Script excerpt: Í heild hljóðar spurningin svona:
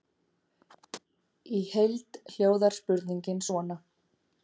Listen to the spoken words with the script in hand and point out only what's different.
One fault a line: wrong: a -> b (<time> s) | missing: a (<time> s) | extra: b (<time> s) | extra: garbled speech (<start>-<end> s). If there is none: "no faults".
no faults